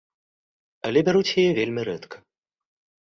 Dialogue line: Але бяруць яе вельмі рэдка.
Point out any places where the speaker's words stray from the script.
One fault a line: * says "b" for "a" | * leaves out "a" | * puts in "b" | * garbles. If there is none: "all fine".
all fine